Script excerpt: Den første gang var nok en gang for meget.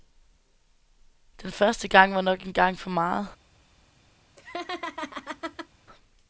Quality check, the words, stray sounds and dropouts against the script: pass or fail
fail